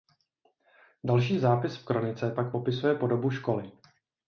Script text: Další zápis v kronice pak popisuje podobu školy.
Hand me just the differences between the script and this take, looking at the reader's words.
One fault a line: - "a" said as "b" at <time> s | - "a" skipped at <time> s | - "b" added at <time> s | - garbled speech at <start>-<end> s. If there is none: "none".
none